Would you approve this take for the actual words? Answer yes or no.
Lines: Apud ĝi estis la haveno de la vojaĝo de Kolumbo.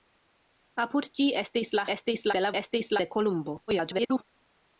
no